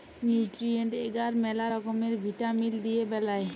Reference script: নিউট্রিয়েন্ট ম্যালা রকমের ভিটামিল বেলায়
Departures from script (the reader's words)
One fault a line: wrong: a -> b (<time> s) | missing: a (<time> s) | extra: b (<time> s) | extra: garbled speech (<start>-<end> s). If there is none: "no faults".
extra: এগার (1.1 s)
extra: দিয়ে (2.8 s)